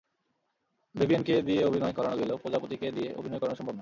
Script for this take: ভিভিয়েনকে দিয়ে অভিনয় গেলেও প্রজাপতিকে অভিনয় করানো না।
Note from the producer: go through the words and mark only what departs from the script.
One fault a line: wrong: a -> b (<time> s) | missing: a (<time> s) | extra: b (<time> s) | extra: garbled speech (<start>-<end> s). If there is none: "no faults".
extra: করানো (1.9 s)
extra: দিয়ে (2.9 s)
extra: সম্ভব (3.5 s)